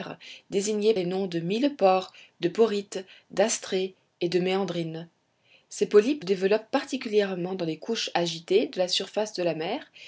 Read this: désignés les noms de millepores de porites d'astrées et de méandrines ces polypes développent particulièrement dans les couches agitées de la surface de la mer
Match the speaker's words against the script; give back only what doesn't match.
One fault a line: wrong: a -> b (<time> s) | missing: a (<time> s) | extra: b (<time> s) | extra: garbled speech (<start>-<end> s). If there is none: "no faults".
no faults